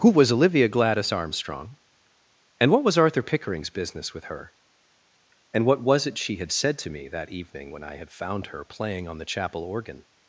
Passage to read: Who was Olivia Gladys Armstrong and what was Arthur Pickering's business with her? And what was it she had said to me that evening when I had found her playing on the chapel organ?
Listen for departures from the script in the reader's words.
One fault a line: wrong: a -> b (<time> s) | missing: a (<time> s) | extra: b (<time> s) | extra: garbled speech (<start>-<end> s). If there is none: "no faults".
no faults